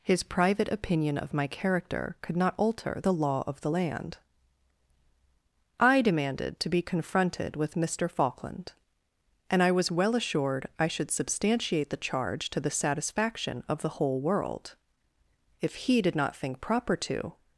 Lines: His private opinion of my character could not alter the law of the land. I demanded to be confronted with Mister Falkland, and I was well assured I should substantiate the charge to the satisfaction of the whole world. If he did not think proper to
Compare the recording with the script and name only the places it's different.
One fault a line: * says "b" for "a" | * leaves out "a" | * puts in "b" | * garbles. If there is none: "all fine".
all fine